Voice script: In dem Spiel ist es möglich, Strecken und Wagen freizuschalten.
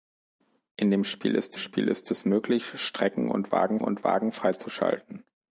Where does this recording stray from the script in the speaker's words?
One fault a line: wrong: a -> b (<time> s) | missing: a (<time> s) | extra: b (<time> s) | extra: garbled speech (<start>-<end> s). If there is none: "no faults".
extra: Spiel ist (1.5 s)
extra: und Wagen (3.8 s)